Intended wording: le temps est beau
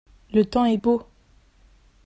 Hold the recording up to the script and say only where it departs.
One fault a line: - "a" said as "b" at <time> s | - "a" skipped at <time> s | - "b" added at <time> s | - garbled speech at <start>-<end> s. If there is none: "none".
none